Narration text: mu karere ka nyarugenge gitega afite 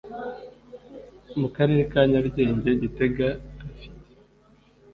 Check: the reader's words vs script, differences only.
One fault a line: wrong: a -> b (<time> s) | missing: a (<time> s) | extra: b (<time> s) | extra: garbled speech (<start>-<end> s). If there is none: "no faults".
no faults